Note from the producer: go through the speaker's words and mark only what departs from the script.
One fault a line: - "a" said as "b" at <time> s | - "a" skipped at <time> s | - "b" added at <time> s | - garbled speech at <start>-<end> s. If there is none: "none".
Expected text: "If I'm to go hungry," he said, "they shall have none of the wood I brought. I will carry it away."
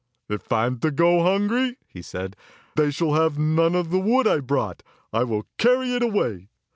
none